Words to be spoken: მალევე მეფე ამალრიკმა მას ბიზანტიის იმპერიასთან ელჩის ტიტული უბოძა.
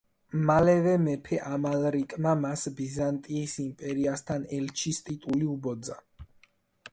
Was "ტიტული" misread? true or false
false